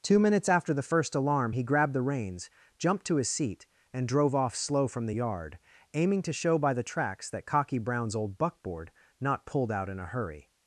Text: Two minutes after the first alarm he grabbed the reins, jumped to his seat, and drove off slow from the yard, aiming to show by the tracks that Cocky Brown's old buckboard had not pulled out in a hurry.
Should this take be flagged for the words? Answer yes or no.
yes